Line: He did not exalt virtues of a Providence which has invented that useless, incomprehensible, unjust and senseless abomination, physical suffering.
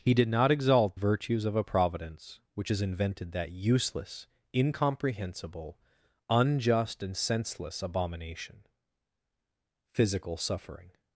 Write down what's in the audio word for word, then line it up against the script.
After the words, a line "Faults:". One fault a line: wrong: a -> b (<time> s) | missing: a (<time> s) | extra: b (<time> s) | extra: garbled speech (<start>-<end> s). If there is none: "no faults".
He did not exalt virtues of a Providence which has invented that useless, incomprehensible, unjust and senseless abomination, physical suffering.
Faults:
no faults